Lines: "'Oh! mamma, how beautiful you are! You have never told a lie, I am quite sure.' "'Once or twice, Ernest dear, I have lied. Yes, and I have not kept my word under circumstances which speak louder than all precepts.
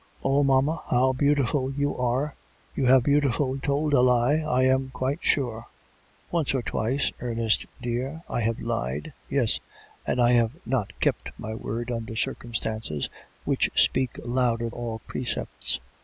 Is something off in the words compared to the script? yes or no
yes